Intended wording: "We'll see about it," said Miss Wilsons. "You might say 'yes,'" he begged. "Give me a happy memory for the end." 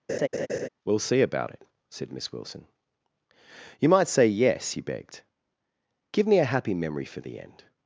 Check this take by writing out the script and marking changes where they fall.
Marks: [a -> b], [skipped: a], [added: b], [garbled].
"We'll see about it," said Miss [Wilsons. -> Wilson] "You might say 'yes,'" he begged. "Give me a happy memory for the end."